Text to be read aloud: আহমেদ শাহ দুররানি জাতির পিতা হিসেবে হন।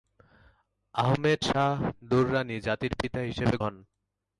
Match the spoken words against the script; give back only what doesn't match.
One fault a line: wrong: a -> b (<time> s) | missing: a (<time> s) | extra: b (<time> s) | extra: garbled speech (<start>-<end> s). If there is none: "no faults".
no faults